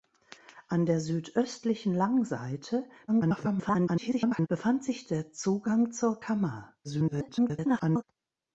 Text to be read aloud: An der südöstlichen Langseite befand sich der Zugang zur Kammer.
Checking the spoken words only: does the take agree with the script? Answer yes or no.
no